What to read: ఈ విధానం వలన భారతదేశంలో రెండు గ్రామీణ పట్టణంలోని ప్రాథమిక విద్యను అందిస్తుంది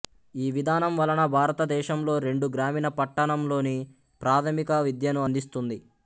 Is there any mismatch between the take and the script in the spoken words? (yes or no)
no